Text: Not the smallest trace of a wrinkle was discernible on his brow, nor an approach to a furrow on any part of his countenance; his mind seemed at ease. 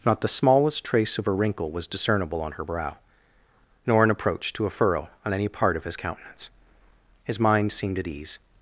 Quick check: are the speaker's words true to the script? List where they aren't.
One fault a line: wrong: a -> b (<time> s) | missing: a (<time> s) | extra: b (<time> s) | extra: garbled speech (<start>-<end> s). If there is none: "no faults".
wrong: his -> her (2.5 s)